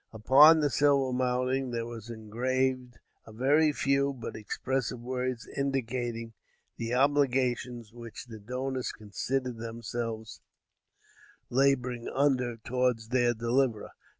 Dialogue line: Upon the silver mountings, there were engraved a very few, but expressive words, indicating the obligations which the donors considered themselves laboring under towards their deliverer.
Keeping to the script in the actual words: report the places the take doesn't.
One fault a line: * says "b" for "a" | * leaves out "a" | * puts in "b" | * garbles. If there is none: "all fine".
all fine